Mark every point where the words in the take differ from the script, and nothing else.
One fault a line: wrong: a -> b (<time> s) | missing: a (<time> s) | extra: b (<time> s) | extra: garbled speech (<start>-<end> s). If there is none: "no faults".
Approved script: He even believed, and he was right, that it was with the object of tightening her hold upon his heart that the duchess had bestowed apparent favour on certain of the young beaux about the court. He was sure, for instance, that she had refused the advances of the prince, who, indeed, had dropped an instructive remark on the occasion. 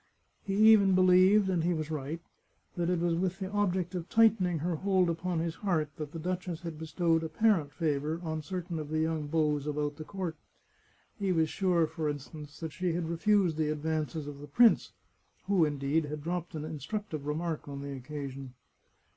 no faults